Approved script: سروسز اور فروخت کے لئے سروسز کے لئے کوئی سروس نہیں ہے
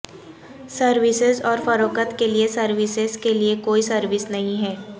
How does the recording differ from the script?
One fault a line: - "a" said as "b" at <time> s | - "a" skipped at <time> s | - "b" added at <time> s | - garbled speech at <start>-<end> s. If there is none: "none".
none